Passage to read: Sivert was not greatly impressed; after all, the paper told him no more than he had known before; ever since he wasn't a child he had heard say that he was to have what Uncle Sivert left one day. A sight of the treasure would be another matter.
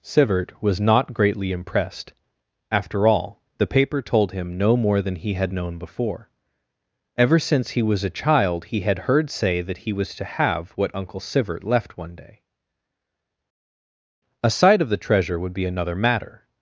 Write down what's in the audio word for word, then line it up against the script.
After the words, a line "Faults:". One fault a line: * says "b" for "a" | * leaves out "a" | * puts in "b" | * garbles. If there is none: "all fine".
Sivert was not greatly impressed; after all, the paper told him no more than he had known before; ever since he was a child he had heard say that he was to have what Uncle Sivert left one day. A sight of the treasure would be another matter.
Faults:
* says "was" for "wasn't"